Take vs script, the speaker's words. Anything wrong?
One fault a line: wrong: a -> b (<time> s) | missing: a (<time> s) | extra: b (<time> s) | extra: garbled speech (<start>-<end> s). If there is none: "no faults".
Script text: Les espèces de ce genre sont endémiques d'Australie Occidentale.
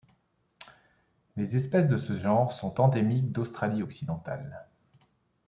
no faults